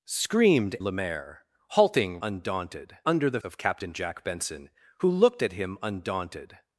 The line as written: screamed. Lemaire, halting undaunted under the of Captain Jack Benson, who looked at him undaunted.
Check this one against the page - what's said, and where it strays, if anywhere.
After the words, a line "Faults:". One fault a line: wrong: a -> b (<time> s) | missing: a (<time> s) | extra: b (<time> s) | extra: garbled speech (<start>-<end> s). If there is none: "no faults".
screamed. Lemaire, halting undaunted under the of Captain Jack Benson, who looked at him undaunted.
Faults:
no faults